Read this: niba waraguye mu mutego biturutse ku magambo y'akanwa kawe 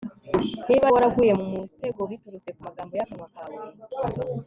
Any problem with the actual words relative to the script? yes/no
no